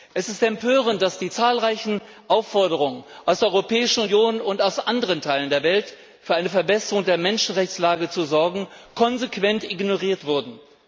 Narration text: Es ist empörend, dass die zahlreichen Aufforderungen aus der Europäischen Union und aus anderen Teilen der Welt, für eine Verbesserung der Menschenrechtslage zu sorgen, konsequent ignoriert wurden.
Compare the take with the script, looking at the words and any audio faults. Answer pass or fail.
pass